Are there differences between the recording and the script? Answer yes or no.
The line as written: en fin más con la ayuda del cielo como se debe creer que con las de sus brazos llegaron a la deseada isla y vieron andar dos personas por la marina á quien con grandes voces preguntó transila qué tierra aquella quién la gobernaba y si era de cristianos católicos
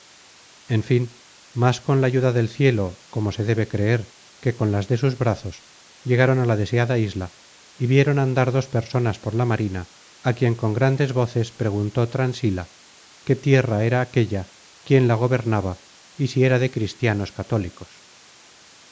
yes